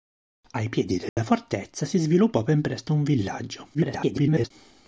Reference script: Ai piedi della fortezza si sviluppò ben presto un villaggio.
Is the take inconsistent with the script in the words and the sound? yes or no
yes